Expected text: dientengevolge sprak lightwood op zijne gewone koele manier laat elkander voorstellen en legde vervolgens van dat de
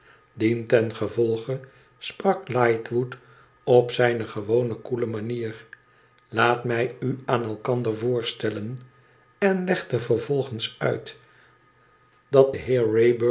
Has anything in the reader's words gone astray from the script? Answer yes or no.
yes